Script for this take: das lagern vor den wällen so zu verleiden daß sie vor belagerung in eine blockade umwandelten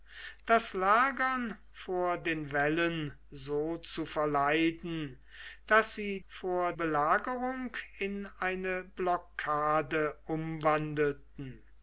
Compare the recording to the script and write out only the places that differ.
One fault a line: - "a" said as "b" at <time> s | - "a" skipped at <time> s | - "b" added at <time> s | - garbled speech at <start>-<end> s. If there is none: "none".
none